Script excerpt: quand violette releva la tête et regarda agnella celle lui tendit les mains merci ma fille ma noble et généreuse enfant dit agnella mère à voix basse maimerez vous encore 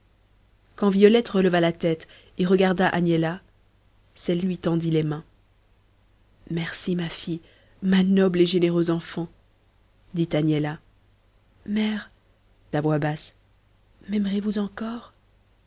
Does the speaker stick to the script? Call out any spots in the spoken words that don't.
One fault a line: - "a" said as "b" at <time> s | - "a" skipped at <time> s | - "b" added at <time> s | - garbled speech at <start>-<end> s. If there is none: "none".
none